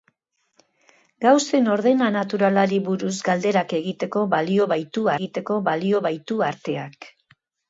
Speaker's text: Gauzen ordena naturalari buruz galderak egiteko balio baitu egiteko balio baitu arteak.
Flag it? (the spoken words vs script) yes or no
no